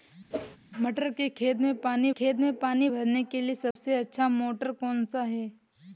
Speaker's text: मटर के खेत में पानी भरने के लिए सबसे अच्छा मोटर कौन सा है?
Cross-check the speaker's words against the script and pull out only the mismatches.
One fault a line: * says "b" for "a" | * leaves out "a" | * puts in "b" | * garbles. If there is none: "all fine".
* puts in "खेत में पानी"